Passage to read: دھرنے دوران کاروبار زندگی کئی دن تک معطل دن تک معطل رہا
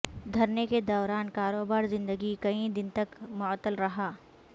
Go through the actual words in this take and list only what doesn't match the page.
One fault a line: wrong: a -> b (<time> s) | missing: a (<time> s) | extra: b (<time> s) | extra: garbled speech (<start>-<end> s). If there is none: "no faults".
extra: کے (0.7 s)
missing: دن تک معطل (3.8 s)